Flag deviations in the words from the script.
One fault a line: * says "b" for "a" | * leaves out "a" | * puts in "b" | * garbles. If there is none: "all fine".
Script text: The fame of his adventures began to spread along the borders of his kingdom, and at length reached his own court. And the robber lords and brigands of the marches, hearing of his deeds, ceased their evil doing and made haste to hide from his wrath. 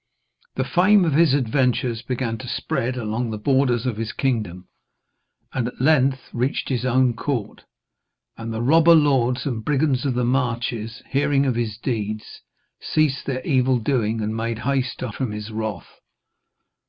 * leaves out "hide"